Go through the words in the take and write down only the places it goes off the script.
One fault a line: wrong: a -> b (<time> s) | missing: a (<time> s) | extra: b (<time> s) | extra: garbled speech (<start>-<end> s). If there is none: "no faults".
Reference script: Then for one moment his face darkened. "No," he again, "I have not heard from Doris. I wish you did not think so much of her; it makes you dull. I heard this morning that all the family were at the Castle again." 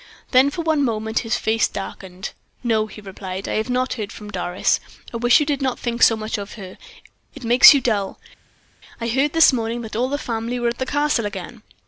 wrong: again -> replied (3.0 s)